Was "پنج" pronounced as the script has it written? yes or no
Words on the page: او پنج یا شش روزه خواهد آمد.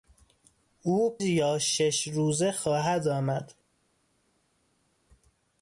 no